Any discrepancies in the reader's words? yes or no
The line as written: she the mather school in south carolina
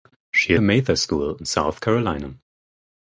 no